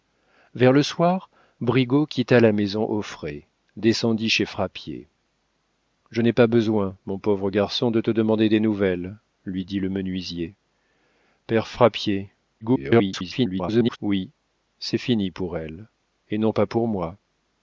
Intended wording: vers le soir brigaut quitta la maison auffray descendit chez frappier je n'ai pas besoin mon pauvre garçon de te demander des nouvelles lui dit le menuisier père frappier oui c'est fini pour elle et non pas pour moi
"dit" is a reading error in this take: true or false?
false